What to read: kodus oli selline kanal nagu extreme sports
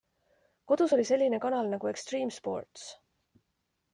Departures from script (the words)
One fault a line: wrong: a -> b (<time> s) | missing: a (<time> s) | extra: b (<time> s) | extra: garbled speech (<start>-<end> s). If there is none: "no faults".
no faults